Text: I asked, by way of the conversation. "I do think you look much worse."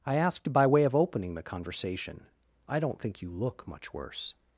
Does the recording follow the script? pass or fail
fail